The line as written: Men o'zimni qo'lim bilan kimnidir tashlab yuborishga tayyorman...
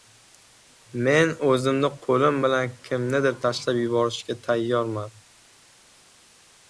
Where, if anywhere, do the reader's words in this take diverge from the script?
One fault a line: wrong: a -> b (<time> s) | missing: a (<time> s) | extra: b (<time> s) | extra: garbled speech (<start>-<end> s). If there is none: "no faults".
no faults